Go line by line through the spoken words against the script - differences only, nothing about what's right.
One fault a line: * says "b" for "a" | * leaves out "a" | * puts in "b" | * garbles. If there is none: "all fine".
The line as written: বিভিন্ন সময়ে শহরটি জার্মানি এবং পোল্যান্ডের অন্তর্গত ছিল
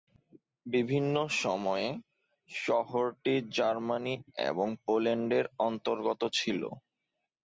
all fine